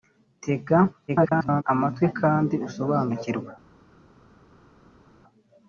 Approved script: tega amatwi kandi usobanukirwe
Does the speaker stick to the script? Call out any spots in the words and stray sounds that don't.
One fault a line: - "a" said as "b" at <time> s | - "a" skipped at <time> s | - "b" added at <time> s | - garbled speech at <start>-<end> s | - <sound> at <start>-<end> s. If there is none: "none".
- garbled speech at 1.1-1.6 s